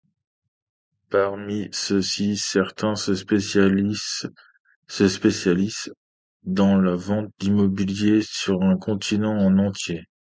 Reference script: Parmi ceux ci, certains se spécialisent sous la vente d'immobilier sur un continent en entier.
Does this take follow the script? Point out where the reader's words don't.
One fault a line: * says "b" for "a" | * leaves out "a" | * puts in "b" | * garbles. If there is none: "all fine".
* says "dans" for "sous"